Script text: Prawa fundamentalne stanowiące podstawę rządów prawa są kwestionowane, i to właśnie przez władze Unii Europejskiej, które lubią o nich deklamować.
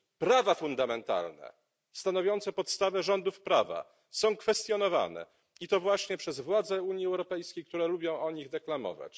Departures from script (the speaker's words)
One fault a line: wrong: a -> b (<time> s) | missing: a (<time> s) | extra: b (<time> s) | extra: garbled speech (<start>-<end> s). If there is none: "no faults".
no faults